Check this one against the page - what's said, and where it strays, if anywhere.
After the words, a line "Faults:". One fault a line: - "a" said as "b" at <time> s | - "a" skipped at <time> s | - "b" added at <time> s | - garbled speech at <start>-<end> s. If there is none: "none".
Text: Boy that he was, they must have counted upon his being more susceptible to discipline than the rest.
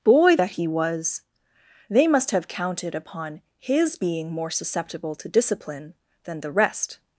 Boy that he was, they must have counted upon his being more susceptible to discipline than the rest.
Faults:
none